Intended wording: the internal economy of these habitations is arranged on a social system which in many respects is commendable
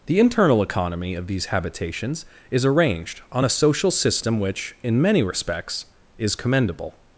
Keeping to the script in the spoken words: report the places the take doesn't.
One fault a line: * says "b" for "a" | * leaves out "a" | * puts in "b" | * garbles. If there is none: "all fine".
all fine